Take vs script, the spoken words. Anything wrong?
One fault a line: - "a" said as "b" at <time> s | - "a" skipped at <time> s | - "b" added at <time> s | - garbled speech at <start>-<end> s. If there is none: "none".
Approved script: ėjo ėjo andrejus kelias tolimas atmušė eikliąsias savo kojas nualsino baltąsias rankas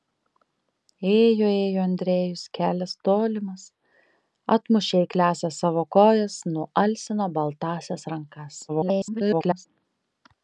- garbled speech at 8.7-9.7 s